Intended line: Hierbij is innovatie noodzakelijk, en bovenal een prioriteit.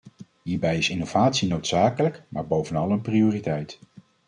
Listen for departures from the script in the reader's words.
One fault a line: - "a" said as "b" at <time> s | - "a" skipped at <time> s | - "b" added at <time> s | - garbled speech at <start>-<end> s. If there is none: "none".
- "en" said as "maar" at 2.3 s